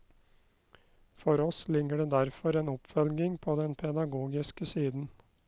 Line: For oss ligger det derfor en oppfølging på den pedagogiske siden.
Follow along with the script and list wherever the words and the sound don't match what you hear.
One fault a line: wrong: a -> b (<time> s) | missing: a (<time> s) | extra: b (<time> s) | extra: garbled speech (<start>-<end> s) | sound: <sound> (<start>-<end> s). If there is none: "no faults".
no faults